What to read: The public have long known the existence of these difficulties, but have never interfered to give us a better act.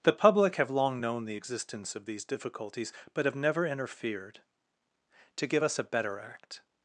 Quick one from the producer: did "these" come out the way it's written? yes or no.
yes